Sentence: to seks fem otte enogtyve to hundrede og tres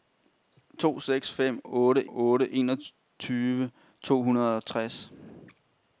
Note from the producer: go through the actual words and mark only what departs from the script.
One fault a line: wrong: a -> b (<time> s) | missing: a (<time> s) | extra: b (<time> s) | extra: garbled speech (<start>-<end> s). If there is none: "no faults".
extra: otte (2.1 s)